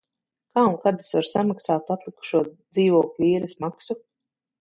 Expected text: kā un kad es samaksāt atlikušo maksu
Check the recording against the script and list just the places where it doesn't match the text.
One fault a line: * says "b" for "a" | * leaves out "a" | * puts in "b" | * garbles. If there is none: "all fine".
* puts in "varu"
* puts in "dzīvokļa īres"